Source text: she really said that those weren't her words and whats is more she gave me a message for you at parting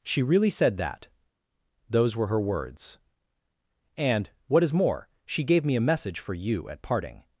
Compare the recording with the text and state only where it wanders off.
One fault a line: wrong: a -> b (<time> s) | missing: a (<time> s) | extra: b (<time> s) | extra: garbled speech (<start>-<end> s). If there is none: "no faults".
wrong: weren't -> were (2.1 s)
wrong: whats -> what (4.5 s)